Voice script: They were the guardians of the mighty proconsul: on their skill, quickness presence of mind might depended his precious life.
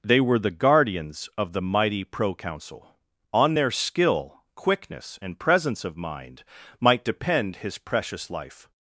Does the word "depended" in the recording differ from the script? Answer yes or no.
yes